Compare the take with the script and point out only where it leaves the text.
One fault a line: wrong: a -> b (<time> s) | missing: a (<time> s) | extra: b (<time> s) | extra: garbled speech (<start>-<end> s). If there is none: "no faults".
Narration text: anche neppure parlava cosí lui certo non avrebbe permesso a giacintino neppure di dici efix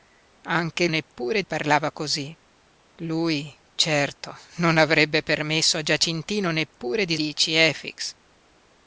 no faults